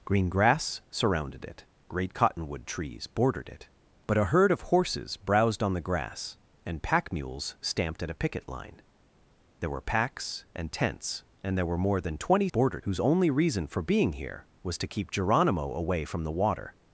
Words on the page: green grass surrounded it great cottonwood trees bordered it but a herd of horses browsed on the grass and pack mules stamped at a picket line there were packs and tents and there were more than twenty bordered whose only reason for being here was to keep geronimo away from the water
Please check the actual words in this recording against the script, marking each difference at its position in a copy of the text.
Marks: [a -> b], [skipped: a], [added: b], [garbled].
green grass surrounded it great cottonwood trees bordered it but a herd of horses browsed on the grass and pack mules stamped at a picket line there were packs and tents and there were more than twenty bordered whose only reason for being here was to keep geronimo away from the water